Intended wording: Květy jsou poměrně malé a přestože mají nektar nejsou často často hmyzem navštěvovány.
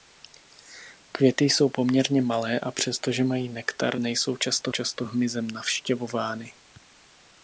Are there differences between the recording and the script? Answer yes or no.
no